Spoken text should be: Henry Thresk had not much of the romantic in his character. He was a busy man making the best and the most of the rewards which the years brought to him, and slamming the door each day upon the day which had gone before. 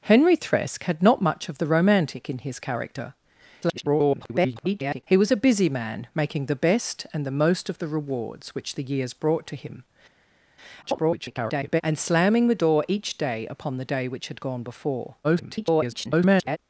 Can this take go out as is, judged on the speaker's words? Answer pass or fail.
fail